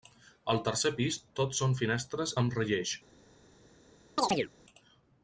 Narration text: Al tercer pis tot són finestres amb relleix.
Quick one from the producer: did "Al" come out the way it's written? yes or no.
yes